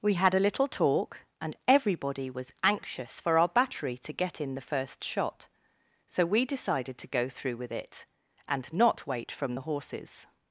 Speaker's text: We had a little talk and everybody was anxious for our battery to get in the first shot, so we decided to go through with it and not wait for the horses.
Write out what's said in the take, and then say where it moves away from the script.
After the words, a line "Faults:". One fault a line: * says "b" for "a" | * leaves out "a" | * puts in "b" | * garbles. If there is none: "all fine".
We had a little talk and everybody was anxious for our battery to get in the first shot, so we decided to go through with it and not wait from the horses.
Faults:
* says "from" for "for"